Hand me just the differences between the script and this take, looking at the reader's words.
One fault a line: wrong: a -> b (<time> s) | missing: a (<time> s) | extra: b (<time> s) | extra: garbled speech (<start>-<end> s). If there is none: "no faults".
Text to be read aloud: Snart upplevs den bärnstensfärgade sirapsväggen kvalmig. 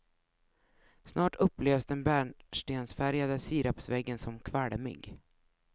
extra: som (4.2 s)